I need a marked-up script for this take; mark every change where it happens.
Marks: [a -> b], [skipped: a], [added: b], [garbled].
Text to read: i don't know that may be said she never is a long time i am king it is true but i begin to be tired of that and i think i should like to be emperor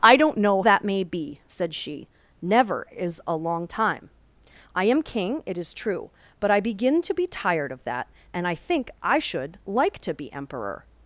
i don't know that may be said she never is a long time i am king it is true but i begin to be tired of that and i think i should like to be emperor